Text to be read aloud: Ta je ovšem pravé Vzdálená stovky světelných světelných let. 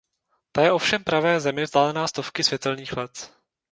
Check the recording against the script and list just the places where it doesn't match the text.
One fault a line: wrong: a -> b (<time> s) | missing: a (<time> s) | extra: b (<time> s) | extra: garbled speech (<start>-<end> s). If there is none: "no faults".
extra: Zemi (1.4 s)
missing: světelných (3.0 s)